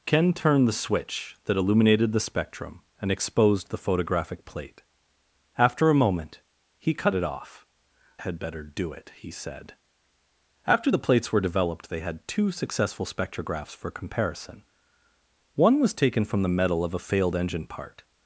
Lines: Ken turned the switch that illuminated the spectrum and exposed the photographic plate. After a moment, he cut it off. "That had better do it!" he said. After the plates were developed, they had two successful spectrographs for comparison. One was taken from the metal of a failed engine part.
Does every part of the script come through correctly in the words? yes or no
no